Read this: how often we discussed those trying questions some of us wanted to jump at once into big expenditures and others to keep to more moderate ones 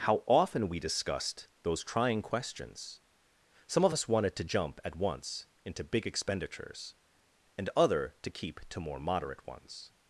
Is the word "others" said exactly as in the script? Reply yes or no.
no